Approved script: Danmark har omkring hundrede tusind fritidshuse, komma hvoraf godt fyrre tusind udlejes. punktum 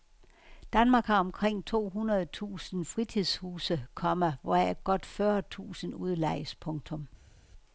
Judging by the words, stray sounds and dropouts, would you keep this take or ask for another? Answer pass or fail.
fail